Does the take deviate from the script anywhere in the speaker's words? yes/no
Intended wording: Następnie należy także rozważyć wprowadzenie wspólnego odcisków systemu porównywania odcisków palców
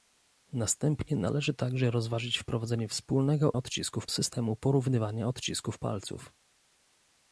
no